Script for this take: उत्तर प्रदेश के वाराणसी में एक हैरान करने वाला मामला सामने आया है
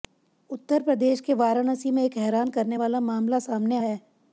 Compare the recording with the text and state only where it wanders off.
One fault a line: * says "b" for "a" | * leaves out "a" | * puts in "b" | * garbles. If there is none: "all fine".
* leaves out "आया"